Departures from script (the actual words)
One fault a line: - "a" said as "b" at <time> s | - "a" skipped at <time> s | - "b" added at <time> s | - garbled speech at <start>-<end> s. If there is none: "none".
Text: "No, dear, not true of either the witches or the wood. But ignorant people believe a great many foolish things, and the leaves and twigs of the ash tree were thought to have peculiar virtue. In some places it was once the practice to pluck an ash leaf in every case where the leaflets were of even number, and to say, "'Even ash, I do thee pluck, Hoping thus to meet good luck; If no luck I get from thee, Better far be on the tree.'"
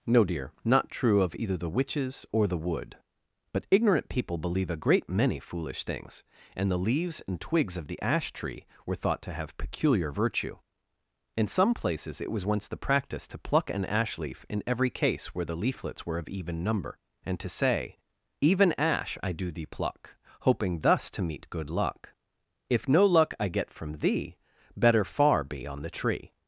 none